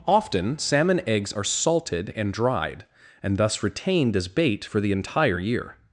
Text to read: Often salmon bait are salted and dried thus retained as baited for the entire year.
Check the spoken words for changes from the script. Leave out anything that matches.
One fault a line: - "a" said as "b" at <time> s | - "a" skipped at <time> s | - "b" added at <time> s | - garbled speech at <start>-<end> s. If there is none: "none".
- "bait" said as "eggs" at 1.1 s
- "and" added at 3.2 s
- "baited" said as "bait" at 4.3 s